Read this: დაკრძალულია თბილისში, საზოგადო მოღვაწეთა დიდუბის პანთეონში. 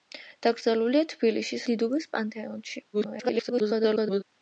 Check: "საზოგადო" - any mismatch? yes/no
yes